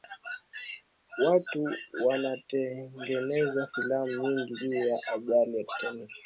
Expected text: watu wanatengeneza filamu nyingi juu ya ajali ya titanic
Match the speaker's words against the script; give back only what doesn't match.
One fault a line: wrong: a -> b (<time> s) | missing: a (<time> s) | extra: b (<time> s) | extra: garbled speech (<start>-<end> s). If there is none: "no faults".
no faults